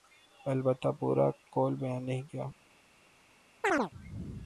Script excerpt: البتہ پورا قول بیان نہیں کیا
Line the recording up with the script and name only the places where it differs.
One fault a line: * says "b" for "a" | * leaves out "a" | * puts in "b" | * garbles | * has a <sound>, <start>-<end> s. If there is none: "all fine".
* has a chirp, 3.6-3.9 s